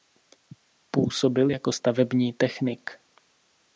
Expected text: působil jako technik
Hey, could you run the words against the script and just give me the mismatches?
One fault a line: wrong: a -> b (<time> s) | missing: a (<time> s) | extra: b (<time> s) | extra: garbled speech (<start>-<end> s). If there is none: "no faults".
extra: stavební (1.7 s)